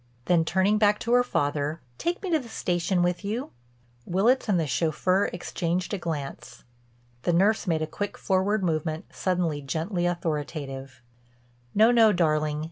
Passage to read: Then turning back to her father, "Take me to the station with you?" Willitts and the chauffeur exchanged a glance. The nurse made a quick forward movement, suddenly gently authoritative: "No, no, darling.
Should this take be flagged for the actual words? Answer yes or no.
no